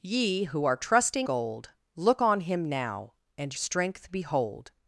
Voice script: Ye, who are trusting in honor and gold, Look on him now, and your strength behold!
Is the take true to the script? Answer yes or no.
no